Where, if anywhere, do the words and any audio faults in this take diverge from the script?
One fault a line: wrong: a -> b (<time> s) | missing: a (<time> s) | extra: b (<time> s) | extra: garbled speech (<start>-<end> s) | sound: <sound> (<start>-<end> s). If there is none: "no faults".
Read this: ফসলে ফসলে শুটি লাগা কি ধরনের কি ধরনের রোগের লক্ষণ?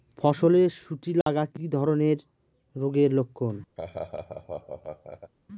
missing: ফসলে (0.6 s)
sound: dropout (1.2-1.3 s)
missing: কি ধরনের (2.2 s)
sound: laugh (3.8-5.3 s)